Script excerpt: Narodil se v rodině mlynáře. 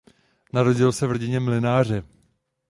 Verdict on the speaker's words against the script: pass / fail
pass